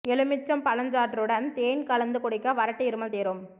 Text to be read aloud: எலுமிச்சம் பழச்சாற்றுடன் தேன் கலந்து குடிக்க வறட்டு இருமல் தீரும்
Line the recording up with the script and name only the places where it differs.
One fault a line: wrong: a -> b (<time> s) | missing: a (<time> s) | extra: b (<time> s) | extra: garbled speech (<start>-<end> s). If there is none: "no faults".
no faults